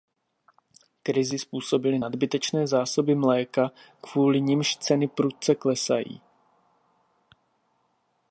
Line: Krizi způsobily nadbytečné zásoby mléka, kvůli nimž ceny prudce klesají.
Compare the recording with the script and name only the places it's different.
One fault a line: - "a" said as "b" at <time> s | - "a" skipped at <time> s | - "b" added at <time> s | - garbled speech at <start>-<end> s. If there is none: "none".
none